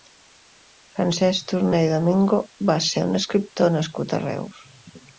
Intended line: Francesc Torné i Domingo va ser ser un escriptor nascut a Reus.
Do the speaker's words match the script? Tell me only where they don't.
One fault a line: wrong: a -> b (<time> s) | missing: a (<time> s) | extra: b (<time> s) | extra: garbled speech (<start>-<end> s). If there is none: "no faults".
missing: ser (3.1 s)